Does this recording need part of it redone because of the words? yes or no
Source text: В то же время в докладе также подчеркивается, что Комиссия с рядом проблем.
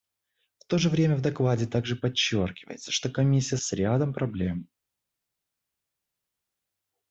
no